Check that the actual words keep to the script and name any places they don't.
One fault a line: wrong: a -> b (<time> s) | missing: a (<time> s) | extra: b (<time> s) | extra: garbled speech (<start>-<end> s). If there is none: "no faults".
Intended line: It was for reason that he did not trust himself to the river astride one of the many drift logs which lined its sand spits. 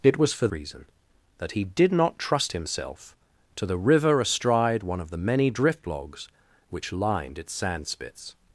no faults